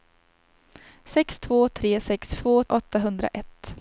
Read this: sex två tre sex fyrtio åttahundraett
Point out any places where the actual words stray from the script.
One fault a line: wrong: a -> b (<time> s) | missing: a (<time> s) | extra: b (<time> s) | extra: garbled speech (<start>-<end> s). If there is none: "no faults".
wrong: fyrtio -> två (2.3 s)